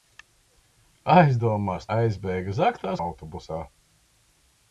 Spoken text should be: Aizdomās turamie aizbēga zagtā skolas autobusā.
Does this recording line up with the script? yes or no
no